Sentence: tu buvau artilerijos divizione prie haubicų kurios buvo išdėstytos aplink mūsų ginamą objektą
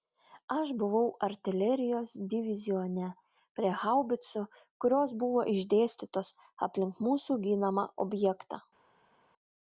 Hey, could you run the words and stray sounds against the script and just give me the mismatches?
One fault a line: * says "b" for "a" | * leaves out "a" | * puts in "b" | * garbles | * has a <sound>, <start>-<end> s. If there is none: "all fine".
* says "aš" for "tu"